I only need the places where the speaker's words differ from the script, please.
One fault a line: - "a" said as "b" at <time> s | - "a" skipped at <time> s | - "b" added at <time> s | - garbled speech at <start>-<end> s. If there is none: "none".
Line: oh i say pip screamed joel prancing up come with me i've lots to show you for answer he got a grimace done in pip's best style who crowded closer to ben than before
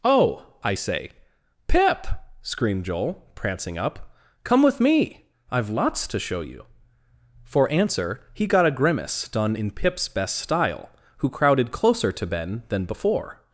none